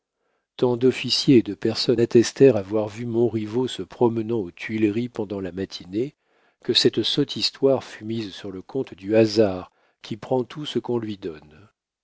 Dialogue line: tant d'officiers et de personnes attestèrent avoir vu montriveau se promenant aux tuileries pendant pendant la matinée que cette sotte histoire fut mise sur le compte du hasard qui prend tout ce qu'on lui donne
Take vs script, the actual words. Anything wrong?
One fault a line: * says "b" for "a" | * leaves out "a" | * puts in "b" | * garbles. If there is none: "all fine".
* leaves out "pendant"